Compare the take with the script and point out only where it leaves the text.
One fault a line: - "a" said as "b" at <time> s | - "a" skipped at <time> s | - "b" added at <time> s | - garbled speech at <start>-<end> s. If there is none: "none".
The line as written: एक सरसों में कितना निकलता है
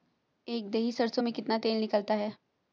- "दही" added at 0.7 s
- "तेल" added at 1.6 s